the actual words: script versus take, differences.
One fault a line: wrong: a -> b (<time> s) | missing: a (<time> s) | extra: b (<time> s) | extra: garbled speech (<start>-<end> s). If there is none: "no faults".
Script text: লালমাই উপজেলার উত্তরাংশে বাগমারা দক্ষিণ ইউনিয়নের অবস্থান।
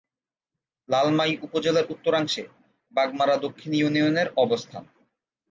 no faults